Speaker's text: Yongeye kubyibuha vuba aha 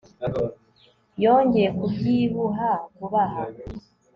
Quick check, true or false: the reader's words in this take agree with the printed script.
true